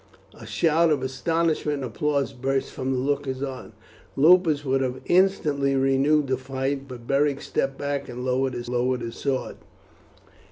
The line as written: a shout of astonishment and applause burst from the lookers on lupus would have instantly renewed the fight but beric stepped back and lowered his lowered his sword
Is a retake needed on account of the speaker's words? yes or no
no